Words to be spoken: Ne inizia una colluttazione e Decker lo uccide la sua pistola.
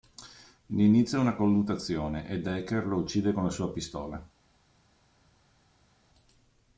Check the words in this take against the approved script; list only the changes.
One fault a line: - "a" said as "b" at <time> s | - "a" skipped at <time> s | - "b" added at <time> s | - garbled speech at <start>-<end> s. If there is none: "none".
- "con" added at 3.3 s